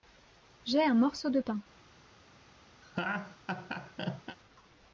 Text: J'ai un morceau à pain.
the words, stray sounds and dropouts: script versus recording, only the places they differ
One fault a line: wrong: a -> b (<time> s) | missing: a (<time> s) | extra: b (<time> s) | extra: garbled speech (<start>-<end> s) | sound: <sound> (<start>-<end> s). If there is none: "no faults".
wrong: à -> de (1.3 s)
sound: laugh (2.8-4.4 s)